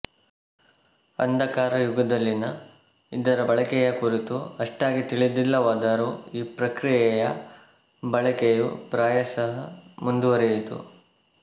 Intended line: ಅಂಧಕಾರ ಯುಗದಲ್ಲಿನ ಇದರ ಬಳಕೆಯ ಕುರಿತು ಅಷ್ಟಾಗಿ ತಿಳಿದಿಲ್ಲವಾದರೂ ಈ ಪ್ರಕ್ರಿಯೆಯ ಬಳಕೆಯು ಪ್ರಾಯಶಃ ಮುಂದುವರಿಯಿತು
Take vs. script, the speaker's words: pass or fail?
pass